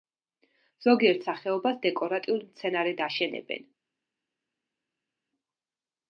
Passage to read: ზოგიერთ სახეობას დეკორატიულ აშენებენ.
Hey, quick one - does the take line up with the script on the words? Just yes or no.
no